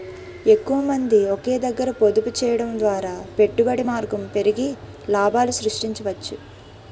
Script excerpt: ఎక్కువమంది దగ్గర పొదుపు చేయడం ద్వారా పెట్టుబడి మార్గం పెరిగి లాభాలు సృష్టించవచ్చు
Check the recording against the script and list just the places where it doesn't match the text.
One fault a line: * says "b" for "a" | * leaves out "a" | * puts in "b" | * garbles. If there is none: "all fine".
* puts in "ఒకే"